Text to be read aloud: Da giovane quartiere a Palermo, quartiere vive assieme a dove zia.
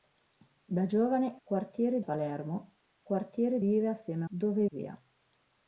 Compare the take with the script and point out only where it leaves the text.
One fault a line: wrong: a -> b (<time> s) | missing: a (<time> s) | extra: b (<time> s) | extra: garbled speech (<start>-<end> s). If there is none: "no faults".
no faults